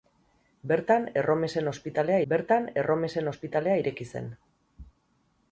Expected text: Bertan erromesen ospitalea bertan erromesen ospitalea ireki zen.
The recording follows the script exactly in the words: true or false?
true